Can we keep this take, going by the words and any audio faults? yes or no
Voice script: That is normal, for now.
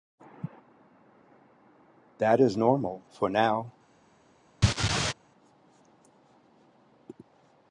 no